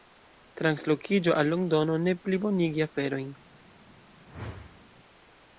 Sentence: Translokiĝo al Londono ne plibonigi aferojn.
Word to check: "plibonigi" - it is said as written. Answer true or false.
true